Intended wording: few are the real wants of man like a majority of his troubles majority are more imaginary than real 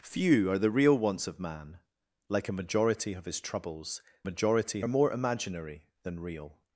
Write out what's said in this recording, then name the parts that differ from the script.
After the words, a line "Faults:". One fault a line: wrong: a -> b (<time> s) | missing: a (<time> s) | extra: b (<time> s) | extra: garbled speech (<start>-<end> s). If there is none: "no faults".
few are the real wants of man like a majority of his troubles majority are more imaginary than real
Faults:
no faults